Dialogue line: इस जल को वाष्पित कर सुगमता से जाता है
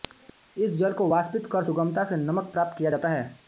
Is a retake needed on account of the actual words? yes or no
yes